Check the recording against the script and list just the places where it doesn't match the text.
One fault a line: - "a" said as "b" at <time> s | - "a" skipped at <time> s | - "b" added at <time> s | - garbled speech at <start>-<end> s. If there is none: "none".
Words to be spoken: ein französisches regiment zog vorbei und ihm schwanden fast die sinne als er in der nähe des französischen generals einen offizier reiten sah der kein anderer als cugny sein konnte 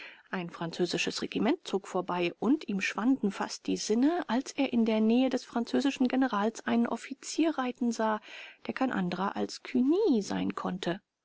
none